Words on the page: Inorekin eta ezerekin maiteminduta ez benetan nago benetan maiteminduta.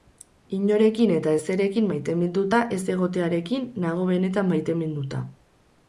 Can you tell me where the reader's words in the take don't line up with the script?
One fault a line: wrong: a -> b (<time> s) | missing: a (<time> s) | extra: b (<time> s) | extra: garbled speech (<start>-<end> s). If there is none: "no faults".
wrong: benetan -> egotearekin (3.0 s)